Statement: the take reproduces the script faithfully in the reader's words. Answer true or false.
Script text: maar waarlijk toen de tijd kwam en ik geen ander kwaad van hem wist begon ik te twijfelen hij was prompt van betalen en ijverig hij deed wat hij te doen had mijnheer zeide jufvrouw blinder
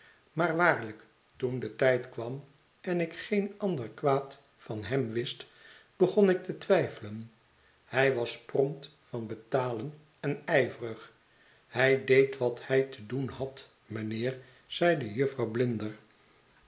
true